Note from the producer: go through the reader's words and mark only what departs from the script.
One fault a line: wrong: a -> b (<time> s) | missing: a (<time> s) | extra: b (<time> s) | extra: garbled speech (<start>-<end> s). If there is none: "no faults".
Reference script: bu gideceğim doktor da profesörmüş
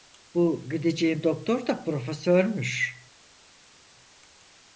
no faults